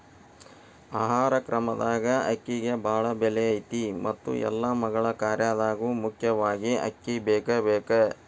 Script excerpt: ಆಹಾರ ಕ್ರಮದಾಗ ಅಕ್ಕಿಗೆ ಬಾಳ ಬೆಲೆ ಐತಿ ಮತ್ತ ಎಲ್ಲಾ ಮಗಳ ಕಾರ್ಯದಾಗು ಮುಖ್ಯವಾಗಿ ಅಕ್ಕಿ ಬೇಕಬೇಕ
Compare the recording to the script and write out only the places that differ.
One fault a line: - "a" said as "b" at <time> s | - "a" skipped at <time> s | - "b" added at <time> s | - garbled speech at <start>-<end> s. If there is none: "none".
none